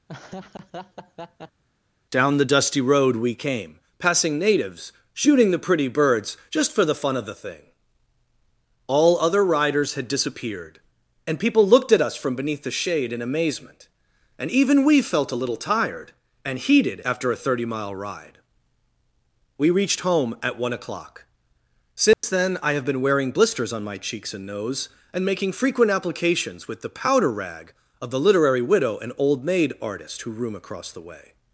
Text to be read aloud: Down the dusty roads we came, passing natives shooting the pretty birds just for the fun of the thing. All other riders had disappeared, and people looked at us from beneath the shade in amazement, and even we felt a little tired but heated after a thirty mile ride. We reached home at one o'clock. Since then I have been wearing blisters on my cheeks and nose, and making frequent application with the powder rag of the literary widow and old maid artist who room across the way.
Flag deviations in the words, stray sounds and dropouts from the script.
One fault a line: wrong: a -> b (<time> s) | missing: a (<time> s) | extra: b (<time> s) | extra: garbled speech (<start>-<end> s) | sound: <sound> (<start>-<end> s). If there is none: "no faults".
sound: laugh (0.1-1.6 s)
wrong: roads -> road (2.8 s)
wrong: but -> and (16.4 s)
sound: dropout (22.1-22.2 s)
wrong: application -> applications (25.9 s)